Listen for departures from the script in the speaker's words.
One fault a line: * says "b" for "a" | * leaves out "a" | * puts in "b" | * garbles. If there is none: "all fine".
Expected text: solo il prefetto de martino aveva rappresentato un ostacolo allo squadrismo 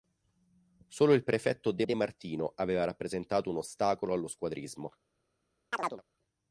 * puts in "de"